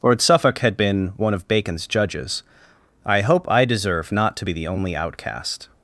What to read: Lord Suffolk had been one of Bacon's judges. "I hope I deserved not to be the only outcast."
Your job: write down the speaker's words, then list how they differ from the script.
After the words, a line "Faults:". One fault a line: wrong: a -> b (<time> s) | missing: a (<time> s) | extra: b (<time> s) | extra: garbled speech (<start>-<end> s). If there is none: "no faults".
Lord Suffolk had been one of Bacon's judges. "I hope I deserve not to be the only outcast."
Faults:
wrong: deserved -> deserve (3.6 s)